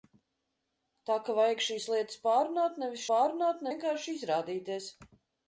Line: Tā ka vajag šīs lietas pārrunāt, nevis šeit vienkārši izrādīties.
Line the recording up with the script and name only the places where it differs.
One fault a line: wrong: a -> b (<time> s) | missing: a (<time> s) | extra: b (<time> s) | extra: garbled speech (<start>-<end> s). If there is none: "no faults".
wrong: šeit -> pārrunāt (3.1 s)